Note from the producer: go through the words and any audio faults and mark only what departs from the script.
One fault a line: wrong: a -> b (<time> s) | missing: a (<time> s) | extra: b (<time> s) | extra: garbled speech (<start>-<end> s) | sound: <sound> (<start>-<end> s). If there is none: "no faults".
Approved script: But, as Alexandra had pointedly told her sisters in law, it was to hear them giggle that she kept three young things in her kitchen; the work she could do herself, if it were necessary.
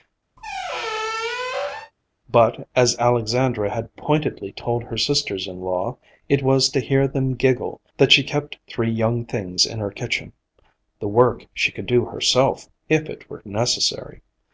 sound: squeak (0.4-1.9 s)